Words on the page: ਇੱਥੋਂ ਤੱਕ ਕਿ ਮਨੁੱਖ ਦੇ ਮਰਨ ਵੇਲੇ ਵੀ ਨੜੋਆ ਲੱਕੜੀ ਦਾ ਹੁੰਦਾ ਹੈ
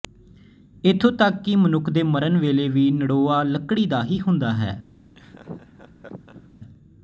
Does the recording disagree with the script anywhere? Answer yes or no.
yes